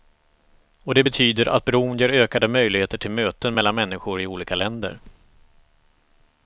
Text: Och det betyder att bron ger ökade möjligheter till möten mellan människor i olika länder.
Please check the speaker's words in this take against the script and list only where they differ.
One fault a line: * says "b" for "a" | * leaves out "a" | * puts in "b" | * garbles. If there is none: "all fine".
all fine